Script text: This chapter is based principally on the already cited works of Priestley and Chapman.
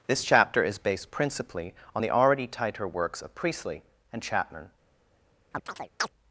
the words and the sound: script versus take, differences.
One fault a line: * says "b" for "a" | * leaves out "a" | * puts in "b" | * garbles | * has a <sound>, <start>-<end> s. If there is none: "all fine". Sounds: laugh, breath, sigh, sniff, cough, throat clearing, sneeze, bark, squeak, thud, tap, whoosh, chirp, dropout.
* says "tighter" for "cited"
* has a chirp, 5.5-6.1 s